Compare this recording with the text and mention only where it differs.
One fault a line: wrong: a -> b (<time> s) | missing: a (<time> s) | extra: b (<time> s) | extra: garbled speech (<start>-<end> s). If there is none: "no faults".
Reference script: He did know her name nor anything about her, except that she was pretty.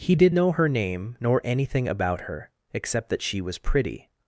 no faults